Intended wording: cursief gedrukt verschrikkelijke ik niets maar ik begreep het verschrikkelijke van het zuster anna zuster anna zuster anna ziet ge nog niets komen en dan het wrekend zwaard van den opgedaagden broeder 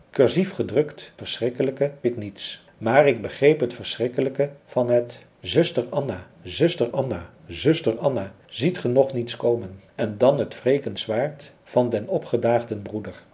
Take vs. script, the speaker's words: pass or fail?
pass